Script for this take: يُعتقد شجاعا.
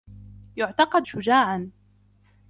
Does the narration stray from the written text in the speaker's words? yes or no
no